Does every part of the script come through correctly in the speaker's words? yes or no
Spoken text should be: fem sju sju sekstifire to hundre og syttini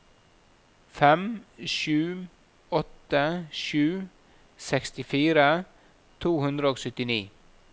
no